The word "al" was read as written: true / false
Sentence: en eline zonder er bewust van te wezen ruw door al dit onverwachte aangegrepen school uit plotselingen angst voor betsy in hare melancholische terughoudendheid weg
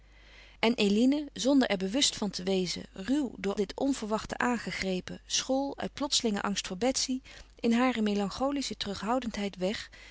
false